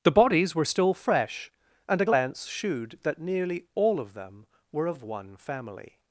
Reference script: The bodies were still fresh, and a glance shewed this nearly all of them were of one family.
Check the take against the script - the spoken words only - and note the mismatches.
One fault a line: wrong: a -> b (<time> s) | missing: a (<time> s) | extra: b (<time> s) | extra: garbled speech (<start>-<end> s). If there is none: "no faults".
wrong: this -> that (3.0 s)